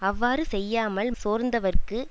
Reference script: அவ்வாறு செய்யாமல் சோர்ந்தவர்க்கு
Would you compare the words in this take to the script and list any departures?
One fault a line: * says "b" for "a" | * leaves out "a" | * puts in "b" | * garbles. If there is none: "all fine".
all fine